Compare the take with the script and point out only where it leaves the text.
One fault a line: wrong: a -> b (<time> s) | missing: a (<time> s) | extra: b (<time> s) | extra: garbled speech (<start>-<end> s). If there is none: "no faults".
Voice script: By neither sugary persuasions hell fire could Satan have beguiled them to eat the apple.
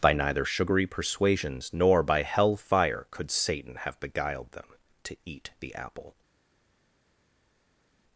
extra: nor by (1.7 s)